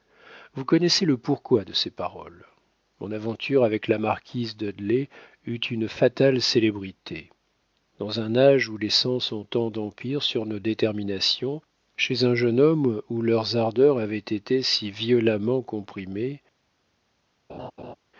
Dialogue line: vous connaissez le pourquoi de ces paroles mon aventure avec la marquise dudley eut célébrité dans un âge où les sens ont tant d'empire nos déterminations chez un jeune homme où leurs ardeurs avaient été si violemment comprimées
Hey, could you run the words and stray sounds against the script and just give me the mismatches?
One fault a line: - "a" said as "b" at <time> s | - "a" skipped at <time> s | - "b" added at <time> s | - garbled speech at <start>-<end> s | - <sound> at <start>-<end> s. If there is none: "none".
- "une fatale" added at 5.6 s
- "sur" added at 10.2 s
- laugh at 17.5-18.0 s